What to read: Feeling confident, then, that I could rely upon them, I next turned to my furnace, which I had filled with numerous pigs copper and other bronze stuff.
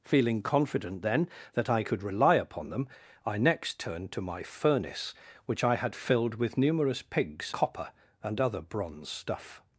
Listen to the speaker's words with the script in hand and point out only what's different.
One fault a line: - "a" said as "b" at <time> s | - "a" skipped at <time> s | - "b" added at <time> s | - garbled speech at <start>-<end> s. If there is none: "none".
none